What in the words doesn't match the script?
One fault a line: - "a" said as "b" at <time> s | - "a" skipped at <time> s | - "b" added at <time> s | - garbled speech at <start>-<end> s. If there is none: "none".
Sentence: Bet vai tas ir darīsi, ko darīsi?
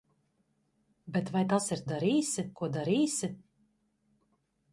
none